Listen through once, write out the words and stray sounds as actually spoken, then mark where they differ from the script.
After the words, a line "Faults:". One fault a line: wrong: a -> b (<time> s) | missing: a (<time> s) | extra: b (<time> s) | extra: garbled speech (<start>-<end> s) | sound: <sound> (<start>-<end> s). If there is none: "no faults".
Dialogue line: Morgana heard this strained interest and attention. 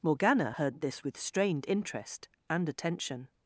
Morgana heard this with strained interest and attention.
Faults:
extra: with (1.0 s)